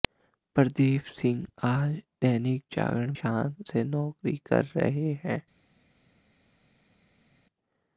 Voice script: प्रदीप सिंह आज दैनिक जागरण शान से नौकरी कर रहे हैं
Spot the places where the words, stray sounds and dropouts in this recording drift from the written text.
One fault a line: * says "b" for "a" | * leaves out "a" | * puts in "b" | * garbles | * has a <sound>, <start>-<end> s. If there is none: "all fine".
all fine